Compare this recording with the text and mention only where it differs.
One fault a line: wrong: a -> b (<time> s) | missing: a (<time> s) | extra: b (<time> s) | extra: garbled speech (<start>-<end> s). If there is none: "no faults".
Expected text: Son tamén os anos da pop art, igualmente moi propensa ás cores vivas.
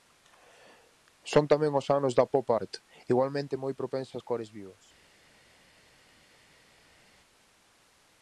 no faults